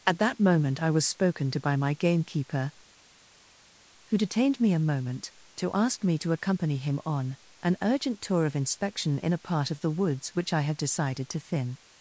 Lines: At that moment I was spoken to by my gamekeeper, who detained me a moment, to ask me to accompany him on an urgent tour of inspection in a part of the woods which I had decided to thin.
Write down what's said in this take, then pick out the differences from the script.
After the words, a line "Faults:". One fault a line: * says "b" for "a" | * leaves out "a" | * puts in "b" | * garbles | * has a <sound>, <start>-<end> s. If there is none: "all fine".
At that moment I was spoken to by my gamekeeper, who detained me a moment, to ask me to accompany him on an urgent tour of inspection in a part of the woods which I had decided to thin.
Faults:
all fine